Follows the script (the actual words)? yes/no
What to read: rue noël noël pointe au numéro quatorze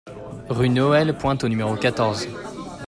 no